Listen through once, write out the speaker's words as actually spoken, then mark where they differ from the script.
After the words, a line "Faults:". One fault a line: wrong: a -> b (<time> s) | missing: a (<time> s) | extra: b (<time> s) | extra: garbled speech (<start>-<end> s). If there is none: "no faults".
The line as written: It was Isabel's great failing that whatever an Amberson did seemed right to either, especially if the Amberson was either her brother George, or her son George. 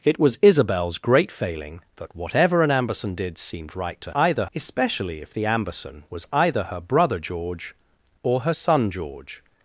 It was Isabel's great failing that whatever an Amberson did seemed right to either, especially if the Amberson was either her brother George, or her son George.
Faults:
no faults